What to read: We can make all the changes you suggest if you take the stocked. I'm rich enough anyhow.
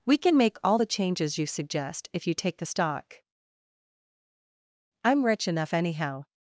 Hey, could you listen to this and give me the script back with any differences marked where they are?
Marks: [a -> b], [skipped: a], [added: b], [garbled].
We can make all the changes you suggest if you take the [stocked. -> stock] I'm rich enough anyhow.